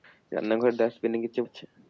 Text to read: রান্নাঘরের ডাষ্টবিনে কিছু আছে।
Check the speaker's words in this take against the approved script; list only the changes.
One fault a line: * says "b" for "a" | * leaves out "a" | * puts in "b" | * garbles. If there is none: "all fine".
all fine